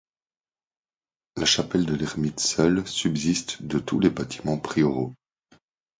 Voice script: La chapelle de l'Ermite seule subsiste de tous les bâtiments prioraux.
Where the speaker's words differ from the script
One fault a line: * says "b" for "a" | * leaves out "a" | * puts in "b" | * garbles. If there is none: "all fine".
all fine